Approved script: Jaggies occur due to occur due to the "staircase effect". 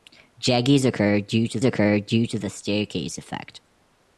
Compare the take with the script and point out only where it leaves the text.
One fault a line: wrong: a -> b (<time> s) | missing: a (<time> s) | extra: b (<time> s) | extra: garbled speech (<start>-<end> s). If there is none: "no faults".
no faults